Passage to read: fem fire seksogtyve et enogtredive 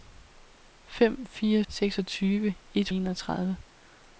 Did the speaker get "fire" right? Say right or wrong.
right